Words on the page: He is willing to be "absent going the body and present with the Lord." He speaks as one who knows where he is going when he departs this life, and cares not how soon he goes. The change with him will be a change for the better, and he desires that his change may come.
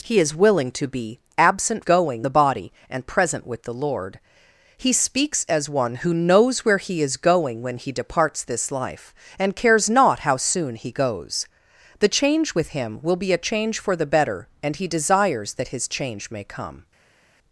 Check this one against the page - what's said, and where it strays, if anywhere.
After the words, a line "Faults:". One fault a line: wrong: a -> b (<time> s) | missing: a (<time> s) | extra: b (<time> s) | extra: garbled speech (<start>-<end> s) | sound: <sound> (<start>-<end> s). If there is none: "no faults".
He is willing to be "absent going the body and present with the Lord." He speaks as one who knows where he is going when he departs this life, and cares not how soon he goes. The change with him will be a change for the better, and he desires that his change may come.
Faults:
no faults